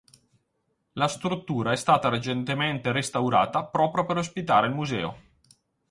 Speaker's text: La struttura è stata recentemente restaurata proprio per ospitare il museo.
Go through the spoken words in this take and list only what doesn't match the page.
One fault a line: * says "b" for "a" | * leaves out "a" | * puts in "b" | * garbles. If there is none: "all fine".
all fine